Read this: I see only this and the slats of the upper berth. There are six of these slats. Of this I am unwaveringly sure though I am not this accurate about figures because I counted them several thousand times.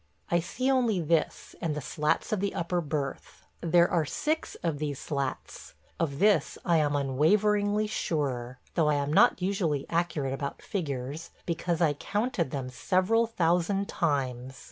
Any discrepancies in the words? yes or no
yes